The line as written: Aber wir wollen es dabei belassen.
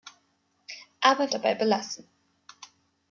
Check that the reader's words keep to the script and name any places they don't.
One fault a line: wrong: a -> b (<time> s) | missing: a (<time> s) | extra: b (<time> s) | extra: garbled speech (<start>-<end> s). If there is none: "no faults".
missing: wir wollen es (1.3 s)